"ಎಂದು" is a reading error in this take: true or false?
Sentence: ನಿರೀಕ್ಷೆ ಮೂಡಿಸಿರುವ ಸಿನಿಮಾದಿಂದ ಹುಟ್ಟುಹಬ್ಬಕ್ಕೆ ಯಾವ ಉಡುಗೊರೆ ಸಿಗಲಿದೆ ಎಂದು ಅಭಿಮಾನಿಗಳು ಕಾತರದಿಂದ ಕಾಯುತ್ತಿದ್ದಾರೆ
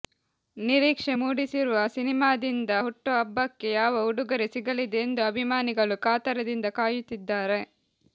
false